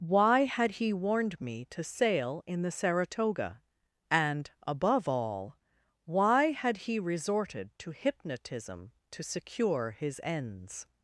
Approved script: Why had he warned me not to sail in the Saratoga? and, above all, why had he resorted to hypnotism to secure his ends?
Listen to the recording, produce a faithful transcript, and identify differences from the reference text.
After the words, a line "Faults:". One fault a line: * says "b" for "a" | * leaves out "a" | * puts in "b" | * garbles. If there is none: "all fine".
Why had he warned me to sail in the Saratoga? and, above all, why had he resorted to hypnotism to secure his ends?
Faults:
* leaves out "not"